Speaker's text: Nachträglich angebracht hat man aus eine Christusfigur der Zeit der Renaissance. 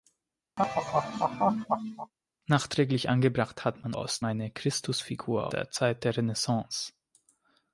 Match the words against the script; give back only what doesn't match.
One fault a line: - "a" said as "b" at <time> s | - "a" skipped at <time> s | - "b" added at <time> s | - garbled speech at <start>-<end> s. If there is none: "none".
none